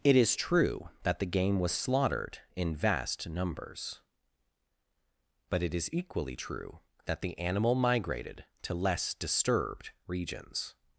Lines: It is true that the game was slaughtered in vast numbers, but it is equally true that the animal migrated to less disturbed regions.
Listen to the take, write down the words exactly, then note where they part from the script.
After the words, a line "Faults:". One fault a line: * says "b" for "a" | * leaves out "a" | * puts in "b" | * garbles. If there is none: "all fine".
It is true that the game was slaughtered in vast numbers, but it is equally true that the animal migrated to less disturbed regions.
Faults:
all fine